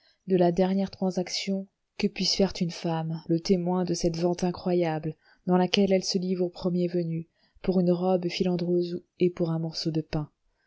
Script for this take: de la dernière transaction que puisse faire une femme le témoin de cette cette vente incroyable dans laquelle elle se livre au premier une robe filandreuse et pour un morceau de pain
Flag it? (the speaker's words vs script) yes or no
yes